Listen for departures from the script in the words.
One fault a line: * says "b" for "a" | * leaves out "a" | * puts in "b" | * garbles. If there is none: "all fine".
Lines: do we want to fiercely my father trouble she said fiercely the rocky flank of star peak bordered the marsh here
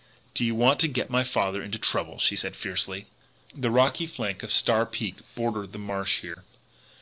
* says "you" for "we"
* says "get" for "fiercely"
* puts in "into"